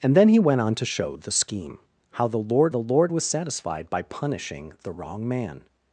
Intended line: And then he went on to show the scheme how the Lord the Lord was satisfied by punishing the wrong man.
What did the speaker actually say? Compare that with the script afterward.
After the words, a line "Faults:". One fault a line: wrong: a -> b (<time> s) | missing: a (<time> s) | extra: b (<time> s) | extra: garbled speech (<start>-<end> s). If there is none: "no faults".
And then he went on to show the scheme how the Lord the Lord was satisfied by punishing the wrong man.
Faults:
no faults